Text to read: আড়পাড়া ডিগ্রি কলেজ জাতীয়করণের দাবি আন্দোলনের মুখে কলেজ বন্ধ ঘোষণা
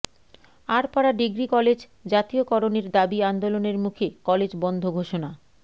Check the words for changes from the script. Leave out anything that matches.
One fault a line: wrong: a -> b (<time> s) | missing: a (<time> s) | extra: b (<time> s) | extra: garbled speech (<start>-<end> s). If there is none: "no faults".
no faults